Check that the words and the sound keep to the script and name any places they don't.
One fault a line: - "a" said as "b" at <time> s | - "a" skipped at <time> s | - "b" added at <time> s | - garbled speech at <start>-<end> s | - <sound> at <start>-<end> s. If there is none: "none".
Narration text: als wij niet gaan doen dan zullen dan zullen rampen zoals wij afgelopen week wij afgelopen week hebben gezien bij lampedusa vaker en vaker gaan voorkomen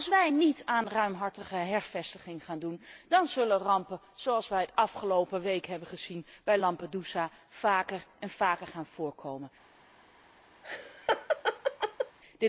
- "aan ruimhartige hervestiging" added at 0.7 s
- "dan zullen" skipped at 3.6 s
- "wij afgelopen week" skipped at 5.7 s
- laugh at 10.6-12.2 s